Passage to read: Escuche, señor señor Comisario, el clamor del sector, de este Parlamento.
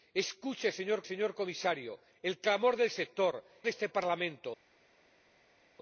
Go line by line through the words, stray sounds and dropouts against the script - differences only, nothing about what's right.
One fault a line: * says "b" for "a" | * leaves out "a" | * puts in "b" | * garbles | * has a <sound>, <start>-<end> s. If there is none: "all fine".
all fine